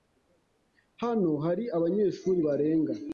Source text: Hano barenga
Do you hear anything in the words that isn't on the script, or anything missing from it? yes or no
yes